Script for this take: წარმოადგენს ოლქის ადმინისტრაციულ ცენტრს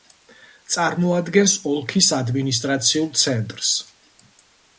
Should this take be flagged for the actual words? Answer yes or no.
no